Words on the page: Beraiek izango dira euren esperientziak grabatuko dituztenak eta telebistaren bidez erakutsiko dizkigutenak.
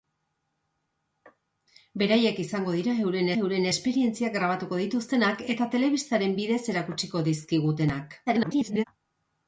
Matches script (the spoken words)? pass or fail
fail